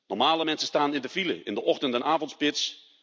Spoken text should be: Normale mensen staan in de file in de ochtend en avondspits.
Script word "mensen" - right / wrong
right